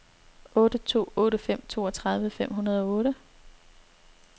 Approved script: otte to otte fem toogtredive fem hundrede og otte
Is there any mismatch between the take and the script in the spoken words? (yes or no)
no